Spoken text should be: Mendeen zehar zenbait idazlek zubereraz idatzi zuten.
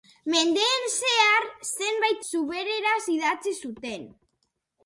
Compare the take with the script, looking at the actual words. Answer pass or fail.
fail